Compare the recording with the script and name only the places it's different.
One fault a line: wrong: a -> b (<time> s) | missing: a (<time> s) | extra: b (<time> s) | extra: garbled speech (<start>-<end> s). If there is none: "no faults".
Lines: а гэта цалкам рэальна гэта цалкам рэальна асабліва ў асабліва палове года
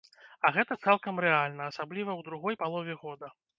missing: гэта цалкам рэальна (1.7 s)
wrong: асабліва -> другой (2.3 s)